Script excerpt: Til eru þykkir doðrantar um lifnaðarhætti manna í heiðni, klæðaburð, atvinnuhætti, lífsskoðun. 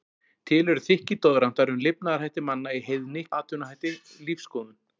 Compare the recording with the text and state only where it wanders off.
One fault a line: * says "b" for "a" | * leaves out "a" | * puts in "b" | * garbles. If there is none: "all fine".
* leaves out "klæðaburð"